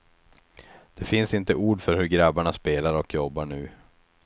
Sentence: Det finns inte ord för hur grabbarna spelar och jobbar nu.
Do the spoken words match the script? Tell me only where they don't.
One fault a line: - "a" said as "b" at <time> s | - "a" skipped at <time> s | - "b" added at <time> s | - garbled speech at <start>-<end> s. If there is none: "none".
none